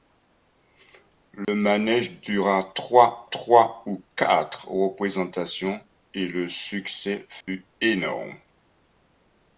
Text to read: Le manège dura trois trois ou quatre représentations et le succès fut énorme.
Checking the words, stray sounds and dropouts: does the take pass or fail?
fail